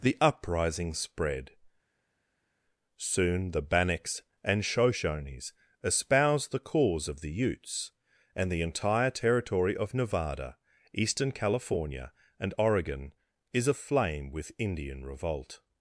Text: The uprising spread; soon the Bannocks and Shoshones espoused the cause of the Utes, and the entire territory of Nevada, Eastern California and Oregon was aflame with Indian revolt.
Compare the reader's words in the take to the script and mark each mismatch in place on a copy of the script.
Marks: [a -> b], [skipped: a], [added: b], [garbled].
The uprising spread; soon the Bannocks and Shoshones espoused the cause of the Utes, and the entire territory of Nevada, Eastern California and Oregon [was -> is] aflame with Indian revolt.